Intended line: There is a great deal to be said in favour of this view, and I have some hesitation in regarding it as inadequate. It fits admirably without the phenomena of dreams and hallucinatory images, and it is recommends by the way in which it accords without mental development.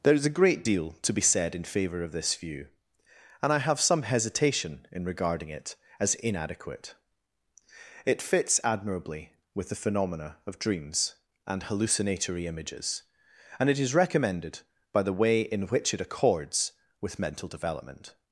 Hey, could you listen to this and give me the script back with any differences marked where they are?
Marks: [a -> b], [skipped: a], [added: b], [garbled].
There is a great deal to be said in favour of this view, and I have some hesitation in regarding it as inadequate. It fits admirably [without -> with] the phenomena of dreams and hallucinatory images, and it is [recommends -> recommended] by the way in which it accords [without -> with] mental development.